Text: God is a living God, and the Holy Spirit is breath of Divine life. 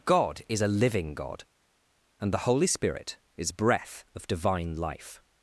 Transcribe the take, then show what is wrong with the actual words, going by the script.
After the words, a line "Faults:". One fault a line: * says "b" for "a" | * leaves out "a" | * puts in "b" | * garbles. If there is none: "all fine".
God is a living God, and the Holy Spirit is breath of Divine life.
Faults:
all fine